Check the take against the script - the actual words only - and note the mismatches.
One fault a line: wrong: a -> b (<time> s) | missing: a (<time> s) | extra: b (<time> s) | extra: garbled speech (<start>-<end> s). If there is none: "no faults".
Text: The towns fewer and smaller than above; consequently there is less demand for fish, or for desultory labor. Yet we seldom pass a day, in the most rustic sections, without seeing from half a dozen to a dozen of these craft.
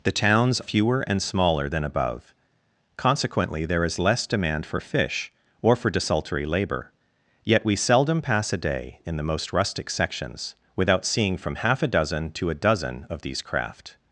no faults